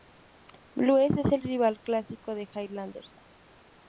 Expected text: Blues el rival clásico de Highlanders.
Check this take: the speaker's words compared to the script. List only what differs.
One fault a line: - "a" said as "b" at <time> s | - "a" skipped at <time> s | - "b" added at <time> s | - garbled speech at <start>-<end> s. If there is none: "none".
- "es" added at 1.1 s